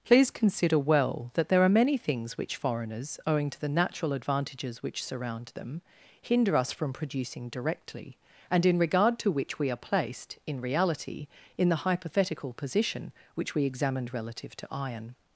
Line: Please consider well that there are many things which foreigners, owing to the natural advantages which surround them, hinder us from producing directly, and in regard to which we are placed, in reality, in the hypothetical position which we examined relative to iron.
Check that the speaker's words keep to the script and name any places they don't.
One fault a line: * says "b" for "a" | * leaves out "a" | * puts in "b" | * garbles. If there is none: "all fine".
all fine